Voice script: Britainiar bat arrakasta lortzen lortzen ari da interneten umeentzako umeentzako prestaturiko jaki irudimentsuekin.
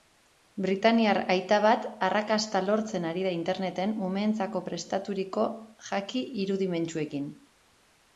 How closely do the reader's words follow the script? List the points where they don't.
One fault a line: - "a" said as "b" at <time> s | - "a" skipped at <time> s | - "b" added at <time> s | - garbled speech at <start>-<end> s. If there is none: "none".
- "aita" added at 1.3 s
- "lortzen" skipped at 3.0 s
- "umeentzako" skipped at 4.6 s